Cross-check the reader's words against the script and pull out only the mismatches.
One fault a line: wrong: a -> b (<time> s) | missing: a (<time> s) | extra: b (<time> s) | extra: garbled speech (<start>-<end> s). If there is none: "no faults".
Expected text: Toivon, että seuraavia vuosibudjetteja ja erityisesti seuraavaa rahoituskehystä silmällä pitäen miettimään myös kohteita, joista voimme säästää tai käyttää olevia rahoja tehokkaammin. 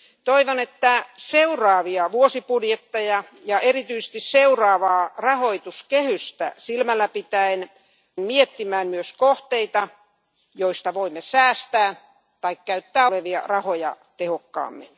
no faults